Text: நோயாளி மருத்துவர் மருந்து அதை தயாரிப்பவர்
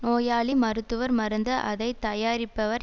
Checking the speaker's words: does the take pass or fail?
pass